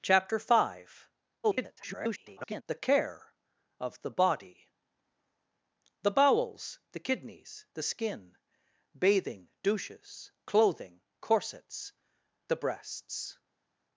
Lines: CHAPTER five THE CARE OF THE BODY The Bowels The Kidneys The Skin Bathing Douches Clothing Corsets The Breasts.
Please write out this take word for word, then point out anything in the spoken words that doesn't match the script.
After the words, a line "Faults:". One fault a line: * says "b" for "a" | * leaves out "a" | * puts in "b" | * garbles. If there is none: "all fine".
CHAPTER five [garbled] THE CARE OF THE BODY The Bowels The Kidneys The Skin Bathing Douches Clothing Corsets The Breasts.
Faults:
* garbles